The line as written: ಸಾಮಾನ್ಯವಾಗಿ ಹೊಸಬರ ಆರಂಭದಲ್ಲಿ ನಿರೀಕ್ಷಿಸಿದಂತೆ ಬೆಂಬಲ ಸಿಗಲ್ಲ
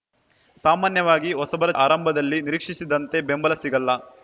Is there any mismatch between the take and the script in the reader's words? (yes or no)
no